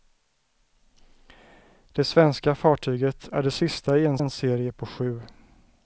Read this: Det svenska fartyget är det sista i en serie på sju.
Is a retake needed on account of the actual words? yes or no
yes